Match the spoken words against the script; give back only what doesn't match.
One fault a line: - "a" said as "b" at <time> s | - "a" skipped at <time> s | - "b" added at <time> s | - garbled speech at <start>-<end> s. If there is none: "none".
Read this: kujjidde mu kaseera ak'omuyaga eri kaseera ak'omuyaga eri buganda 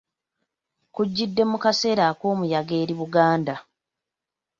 - "kaseera ak'omuyaga eri" skipped at 2.9 s